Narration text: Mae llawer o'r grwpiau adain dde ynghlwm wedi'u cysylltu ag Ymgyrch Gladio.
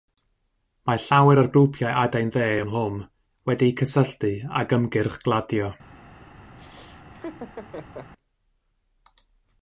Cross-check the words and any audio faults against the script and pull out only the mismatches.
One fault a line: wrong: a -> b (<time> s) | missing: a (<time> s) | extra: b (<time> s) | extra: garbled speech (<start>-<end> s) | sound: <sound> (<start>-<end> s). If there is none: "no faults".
sound: laugh (6.6-8.1 s)